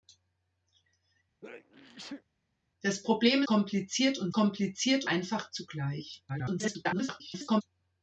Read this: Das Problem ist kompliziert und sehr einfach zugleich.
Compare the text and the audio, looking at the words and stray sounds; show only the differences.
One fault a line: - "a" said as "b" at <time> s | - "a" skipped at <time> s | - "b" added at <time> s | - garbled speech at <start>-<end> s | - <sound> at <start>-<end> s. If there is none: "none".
- sneeze at 1.4-2.2 s
- "ist" skipped at 3.4 s
- "sehr" said as "kompliziert" at 4.3 s
- garbled speech at 6.3-7.6 s